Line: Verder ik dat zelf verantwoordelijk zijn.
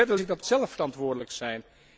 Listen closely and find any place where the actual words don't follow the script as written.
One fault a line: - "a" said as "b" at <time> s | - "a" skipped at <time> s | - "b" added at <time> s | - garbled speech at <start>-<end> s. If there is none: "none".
none